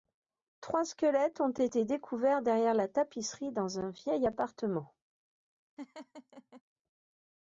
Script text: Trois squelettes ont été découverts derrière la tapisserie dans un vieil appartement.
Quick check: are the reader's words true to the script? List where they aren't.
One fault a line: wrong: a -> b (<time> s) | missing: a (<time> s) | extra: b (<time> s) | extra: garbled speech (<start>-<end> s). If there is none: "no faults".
no faults